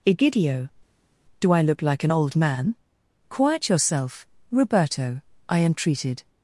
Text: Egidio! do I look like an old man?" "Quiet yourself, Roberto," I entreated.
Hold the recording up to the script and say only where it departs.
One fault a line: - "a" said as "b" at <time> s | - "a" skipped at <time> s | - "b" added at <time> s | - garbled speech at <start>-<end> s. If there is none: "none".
none